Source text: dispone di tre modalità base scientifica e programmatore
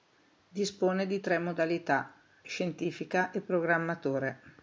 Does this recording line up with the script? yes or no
no